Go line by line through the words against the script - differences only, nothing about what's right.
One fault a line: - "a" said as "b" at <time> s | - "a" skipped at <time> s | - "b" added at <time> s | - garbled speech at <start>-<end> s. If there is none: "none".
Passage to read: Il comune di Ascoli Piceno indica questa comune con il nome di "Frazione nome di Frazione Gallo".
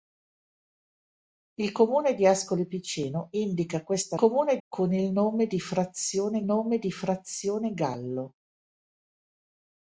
none